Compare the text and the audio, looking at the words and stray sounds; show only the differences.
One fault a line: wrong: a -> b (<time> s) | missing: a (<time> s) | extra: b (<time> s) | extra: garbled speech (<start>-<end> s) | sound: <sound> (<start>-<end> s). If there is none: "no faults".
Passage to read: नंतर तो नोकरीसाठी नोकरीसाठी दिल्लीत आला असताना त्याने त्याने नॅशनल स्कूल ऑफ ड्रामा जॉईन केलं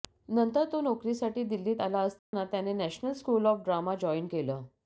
missing: नोकरीसाठी (1.4 s)
sound: dropout (2.2-2.3 s)
missing: त्याने (2.7 s)